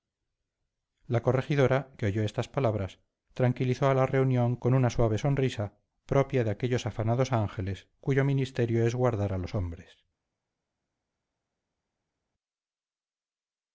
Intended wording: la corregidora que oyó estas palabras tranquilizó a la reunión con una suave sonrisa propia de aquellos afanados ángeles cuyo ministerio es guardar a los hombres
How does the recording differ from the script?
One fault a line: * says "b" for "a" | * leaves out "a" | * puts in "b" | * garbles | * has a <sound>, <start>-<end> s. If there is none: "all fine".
all fine